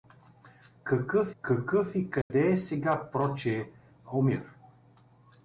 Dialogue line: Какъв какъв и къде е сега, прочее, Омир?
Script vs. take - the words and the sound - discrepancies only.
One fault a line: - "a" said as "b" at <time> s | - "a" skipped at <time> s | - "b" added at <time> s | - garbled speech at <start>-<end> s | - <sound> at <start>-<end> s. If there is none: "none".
- dropout at 2.2-2.3 s